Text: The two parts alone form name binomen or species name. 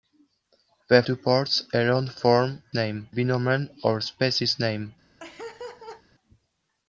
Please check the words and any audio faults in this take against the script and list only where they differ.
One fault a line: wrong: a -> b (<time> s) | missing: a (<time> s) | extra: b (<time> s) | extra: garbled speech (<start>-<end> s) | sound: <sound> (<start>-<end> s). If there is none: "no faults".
sound: laugh (5.2-6.0 s)